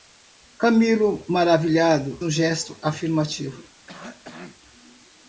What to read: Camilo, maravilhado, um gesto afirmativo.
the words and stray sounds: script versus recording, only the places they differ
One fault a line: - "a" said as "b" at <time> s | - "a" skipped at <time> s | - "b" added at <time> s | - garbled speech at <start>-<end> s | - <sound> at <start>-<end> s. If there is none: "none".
- cough at 3.9-4.6 s